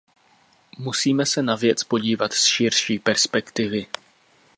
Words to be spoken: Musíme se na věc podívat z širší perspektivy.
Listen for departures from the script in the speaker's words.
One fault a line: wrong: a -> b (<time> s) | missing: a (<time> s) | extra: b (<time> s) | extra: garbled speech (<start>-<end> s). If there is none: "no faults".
no faults